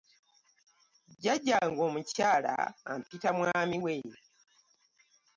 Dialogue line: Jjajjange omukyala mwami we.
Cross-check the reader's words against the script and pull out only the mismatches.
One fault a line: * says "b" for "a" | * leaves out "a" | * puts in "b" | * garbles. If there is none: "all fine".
* puts in "ampita"